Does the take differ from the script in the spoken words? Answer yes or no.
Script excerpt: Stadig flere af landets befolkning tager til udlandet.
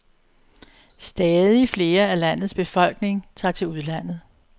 no